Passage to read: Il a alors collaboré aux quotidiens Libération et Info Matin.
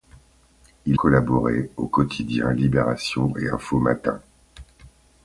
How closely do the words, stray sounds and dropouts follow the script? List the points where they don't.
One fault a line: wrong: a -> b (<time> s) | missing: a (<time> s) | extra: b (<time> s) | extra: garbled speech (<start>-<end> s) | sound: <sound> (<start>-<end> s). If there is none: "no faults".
missing: a alors (1.0 s)